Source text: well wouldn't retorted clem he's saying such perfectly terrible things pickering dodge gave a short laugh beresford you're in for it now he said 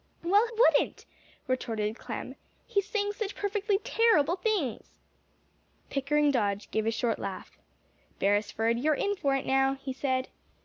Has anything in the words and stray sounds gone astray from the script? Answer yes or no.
no